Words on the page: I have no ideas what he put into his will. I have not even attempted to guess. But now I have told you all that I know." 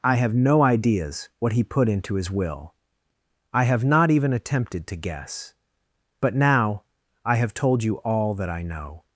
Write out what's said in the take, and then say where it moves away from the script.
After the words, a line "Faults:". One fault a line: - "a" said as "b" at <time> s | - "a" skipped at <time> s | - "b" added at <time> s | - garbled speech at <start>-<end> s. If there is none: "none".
I have no ideas what he put into his will. I have not even attempted to guess. But now I have told you all that I know."
Faults:
none